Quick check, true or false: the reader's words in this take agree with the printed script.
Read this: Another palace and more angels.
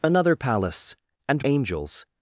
false